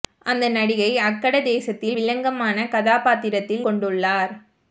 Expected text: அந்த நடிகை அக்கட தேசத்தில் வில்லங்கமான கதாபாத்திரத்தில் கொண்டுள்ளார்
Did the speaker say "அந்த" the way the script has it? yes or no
yes